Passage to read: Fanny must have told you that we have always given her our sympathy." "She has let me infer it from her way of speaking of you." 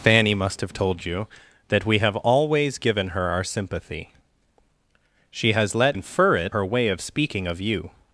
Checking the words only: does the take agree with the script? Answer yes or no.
no